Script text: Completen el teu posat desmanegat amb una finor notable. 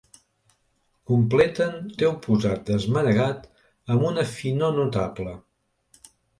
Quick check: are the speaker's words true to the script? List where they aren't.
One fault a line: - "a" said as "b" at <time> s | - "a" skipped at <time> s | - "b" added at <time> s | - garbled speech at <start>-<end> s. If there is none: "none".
- "el" skipped at 1.8 s